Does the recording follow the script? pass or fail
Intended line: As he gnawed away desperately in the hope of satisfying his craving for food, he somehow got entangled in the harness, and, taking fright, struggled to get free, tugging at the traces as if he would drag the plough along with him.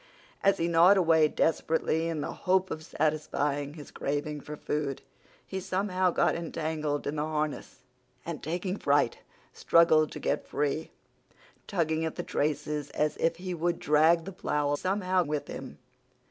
fail